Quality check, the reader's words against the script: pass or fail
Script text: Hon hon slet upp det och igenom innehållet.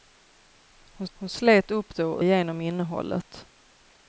pass